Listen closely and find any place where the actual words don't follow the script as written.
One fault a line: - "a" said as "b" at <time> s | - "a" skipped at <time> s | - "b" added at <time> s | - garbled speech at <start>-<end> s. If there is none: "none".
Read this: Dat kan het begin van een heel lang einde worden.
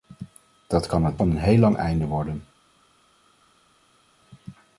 - "begin" skipped at 1.2 s